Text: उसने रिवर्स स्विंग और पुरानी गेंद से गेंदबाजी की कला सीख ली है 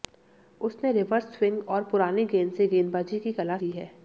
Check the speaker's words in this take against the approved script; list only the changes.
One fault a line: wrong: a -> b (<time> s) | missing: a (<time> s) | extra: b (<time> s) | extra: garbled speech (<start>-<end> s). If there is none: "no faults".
missing: सीख (3.6 s)